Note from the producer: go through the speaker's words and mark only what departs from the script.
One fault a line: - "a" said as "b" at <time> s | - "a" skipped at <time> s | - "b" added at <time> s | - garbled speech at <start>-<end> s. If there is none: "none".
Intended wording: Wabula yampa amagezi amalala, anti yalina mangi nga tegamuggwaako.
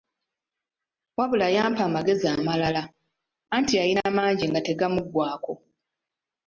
none